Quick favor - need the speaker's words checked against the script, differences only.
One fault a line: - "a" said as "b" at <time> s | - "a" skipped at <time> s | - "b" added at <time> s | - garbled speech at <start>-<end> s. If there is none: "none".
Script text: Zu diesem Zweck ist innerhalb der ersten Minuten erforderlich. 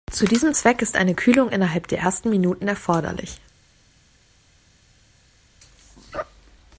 - "eine Kühlung" added at 1.0 s